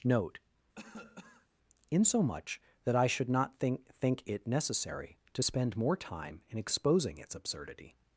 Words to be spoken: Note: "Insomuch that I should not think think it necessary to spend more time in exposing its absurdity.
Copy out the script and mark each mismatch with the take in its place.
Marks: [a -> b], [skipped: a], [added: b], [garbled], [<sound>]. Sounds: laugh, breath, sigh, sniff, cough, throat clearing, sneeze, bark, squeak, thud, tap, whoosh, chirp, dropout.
Note: [cough] "Insomuch that I should not think think it necessary to spend more time in exposing its absurdity.